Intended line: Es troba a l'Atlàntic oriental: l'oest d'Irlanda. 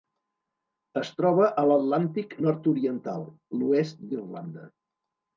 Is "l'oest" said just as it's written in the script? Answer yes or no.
yes